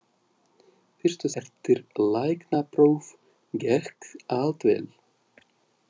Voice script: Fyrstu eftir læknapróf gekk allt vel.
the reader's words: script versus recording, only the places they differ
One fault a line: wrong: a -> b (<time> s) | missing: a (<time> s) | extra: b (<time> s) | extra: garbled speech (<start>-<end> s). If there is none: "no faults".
no faults